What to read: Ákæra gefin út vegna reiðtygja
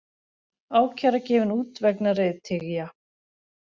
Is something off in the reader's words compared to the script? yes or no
no